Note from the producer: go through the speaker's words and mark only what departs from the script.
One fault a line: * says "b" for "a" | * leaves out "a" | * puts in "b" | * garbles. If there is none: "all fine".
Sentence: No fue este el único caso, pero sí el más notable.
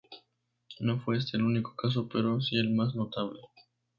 all fine